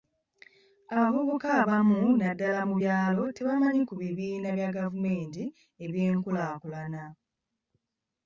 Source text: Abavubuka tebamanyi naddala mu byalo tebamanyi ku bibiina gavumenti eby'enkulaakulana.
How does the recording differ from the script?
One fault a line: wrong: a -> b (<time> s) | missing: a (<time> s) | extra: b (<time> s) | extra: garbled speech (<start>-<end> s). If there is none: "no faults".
wrong: tebamanyi -> abamu (1.6 s)
extra: bya (4.6 s)